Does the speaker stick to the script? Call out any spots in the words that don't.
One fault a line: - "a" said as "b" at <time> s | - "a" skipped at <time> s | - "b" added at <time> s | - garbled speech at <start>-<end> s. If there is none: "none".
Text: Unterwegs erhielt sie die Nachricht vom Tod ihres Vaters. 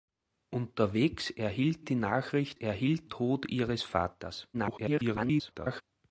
- "sie" skipped at 1.9 s
- "vom" said as "erhielt" at 2.5 s
- garbled speech at 4.5-5.8 s